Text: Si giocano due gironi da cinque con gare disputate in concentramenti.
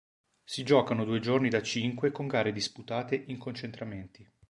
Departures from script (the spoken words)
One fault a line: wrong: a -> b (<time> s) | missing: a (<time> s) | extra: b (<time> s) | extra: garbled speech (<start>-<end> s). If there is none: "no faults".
no faults